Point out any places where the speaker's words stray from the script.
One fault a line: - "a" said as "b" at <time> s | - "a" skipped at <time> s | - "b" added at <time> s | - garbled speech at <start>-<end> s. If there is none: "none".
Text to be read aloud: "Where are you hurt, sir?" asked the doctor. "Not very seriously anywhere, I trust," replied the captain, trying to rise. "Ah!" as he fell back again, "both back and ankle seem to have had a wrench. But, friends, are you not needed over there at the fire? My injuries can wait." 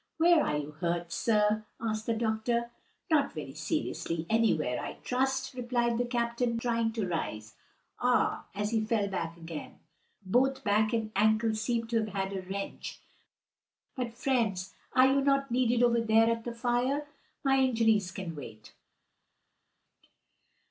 none